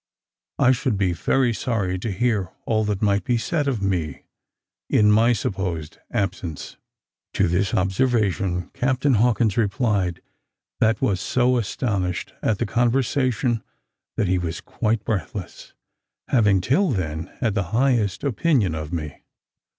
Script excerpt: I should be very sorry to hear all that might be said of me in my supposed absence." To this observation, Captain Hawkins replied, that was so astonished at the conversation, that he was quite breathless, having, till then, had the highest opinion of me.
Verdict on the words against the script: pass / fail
pass